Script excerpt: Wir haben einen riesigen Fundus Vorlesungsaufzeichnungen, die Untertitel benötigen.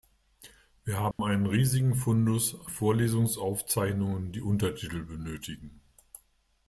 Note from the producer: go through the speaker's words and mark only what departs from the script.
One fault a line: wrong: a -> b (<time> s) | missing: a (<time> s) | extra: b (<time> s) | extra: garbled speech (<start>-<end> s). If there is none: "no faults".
no faults